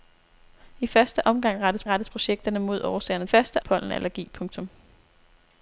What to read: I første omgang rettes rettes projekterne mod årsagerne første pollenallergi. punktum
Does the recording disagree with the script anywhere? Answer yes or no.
no